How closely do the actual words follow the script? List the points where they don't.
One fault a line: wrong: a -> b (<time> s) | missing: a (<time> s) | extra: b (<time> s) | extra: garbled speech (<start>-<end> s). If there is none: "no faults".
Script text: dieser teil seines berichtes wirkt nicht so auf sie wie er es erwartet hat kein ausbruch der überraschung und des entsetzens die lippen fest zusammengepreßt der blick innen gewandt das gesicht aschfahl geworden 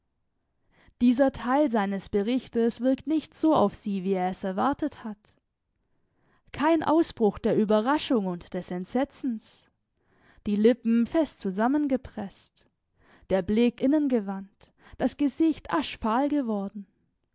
no faults